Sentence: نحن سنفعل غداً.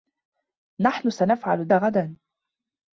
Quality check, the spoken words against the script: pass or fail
pass